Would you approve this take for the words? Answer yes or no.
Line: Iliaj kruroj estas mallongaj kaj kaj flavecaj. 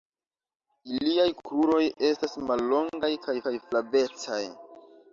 yes